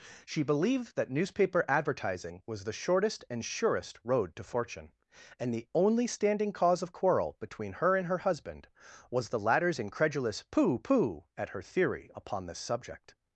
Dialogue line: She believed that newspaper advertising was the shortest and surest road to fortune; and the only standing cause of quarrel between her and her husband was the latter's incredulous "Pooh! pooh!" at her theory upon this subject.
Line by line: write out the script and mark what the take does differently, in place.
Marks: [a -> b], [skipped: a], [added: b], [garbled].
She believed that newspaper advertising was the shortest and surest road to fortune; and the only standing cause of quarrel between her and her husband was the latter's incredulous "Pooh! pooh!" at her theory upon this subject.